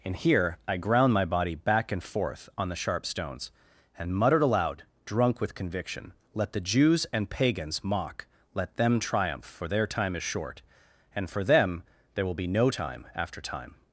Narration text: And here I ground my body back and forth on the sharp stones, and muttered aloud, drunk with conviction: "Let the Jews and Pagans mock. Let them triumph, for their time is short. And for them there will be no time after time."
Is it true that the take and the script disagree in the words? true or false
false